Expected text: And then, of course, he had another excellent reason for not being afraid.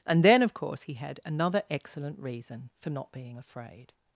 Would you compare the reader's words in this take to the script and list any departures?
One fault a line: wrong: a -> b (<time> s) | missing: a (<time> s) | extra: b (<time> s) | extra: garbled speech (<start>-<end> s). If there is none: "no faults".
no faults